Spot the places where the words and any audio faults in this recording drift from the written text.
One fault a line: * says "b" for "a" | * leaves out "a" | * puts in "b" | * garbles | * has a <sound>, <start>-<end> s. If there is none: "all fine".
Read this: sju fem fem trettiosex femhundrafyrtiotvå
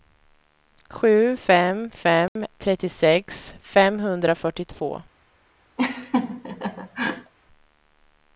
* has a dropout, 2.3-2.4 s
* has a laugh, 5.8-7.3 s